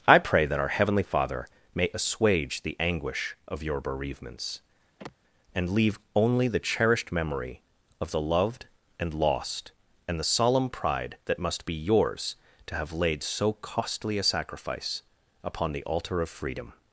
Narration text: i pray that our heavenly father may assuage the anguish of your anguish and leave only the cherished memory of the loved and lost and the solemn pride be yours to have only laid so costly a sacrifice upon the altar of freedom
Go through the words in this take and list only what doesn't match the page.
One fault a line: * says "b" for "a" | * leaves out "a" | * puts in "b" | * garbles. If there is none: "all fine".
* says "bereavements" for "anguish"
* puts in "that must"
* leaves out "only"